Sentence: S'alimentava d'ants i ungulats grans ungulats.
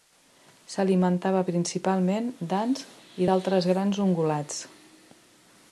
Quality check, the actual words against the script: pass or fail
fail